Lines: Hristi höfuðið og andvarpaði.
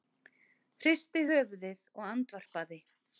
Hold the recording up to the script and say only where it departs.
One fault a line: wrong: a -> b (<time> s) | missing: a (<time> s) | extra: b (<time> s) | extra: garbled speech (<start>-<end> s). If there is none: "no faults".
no faults